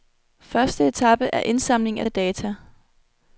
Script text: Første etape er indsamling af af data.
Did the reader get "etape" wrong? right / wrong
right